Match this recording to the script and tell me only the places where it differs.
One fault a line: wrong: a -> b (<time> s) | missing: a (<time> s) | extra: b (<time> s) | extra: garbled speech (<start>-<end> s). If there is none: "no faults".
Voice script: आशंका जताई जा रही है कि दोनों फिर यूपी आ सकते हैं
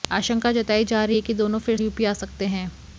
no faults